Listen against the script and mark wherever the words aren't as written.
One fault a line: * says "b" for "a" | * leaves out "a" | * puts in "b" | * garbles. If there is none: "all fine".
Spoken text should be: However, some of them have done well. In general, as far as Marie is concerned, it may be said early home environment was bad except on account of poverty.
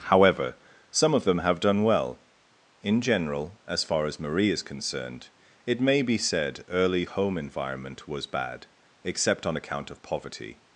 all fine